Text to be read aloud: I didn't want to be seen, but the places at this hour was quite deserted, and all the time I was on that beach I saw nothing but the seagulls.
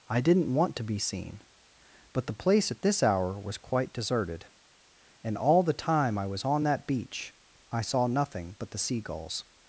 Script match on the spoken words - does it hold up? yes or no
no